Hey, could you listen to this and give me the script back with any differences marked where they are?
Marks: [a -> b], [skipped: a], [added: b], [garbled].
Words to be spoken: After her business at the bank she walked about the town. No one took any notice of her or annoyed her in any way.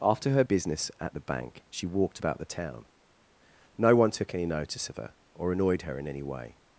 After her business at the bank she walked about the town. No one took any notice of her or annoyed her in any way.